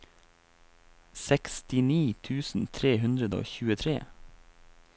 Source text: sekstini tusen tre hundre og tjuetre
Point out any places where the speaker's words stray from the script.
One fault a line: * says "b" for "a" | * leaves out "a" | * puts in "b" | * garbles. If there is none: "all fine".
all fine